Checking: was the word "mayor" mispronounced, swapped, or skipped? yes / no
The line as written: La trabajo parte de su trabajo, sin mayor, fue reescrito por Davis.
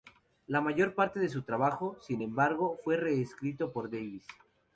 yes